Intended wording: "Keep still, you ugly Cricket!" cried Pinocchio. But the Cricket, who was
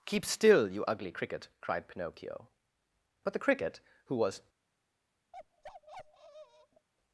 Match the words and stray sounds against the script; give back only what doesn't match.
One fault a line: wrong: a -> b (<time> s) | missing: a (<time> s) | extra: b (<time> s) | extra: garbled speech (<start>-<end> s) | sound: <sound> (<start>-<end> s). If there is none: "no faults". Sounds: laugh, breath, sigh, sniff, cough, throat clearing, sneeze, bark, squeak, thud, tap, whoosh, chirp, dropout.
sound: bark (5.3-6.9 s)